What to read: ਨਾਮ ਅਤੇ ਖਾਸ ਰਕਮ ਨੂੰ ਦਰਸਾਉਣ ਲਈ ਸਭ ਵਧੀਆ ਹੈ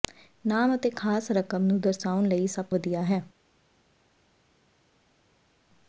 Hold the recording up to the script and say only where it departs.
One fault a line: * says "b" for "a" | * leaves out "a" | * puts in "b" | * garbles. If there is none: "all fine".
all fine